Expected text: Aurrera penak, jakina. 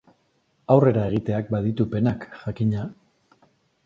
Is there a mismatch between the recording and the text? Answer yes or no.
yes